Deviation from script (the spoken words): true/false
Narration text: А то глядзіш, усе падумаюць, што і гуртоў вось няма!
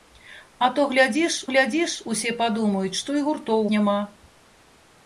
true